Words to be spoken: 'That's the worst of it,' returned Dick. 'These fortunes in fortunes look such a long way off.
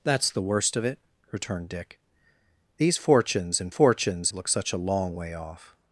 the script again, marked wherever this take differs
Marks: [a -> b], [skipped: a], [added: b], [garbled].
'That's the worst of it,' returned Dick. 'These fortunes in fortunes look such a long way off.